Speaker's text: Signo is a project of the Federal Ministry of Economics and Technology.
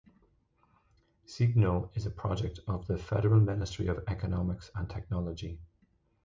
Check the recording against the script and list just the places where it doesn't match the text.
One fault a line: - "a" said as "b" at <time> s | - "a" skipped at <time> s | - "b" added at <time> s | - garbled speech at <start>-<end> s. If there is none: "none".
none